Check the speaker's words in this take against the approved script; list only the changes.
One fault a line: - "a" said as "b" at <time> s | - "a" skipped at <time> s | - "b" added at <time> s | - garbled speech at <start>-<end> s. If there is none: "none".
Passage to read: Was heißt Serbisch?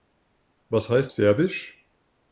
none